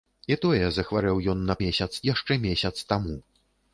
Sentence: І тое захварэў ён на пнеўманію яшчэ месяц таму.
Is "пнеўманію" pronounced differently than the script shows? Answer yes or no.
yes